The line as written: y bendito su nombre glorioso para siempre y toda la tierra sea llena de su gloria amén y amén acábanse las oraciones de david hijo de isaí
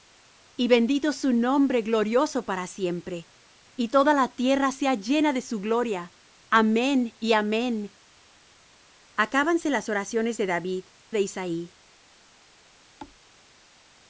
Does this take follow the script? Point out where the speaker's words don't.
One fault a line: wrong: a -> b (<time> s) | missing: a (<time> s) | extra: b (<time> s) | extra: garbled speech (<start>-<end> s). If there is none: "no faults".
missing: hijo (10.8 s)